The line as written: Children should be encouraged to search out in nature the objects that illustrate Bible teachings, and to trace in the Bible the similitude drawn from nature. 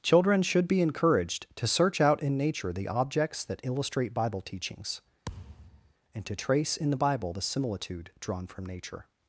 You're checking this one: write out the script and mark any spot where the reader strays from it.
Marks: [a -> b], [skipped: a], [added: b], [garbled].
Children should be encouraged to search out in nature the objects that illustrate Bible teachings, and to trace in the Bible the similitude drawn from nature.